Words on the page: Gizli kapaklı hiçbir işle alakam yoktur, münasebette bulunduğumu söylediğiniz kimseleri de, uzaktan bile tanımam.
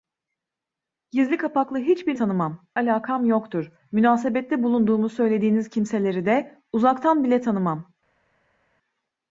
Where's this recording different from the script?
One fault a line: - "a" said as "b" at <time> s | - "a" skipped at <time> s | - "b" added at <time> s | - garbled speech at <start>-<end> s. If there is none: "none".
- "işle" said as "tanımam" at 2.1 s